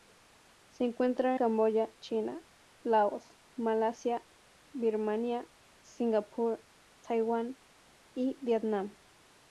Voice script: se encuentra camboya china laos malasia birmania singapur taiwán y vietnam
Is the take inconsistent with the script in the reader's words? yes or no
no